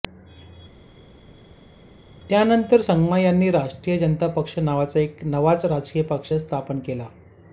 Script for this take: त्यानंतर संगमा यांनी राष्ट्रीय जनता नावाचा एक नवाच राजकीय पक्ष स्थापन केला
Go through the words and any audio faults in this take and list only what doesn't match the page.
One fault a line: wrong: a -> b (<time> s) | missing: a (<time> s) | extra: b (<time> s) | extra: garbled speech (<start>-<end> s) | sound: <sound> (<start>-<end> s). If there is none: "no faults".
extra: पक्ष (4.4 s)